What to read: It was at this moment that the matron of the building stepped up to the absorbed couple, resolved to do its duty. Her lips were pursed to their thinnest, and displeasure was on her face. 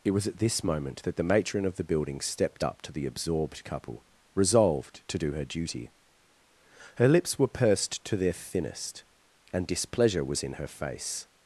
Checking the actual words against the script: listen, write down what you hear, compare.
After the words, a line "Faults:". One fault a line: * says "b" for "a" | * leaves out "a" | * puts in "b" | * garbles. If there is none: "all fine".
It was at this moment that the matron of the building stepped up to the absorbed couple, resolved to do her duty. Her lips were pursed to their thinnest, and displeasure was in her face.
Faults:
* says "her" for "its"
* says "in" for "on"